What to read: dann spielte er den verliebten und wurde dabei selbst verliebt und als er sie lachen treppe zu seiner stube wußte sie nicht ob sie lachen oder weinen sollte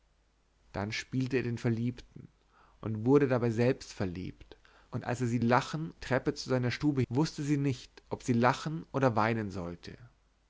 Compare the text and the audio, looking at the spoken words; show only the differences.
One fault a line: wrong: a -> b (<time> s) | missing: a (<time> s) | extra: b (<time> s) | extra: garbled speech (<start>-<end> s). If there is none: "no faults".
no faults